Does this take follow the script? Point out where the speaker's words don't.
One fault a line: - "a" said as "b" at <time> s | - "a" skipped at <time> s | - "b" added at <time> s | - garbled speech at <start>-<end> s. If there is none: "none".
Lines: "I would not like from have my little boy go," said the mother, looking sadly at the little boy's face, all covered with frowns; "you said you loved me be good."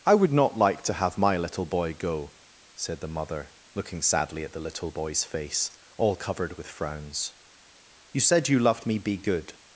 - "from" said as "to" at 0.8 s